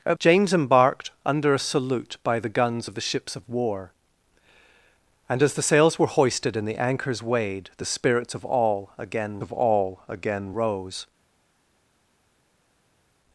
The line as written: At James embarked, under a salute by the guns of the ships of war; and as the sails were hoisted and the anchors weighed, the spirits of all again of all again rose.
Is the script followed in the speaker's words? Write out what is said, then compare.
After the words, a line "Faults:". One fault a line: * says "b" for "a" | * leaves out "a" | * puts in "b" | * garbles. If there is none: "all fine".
At James embarked, under a salute by the guns of the ships of war; and as the sails were hoisted and the anchors weighed, the spirits of all again of all again rose.
Faults:
all fine